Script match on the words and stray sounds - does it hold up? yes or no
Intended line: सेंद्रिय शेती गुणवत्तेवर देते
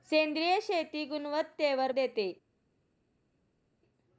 yes